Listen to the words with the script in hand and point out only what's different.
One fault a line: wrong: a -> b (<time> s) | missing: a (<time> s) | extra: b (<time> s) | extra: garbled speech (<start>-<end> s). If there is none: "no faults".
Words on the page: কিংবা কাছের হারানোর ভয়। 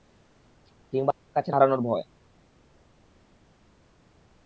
no faults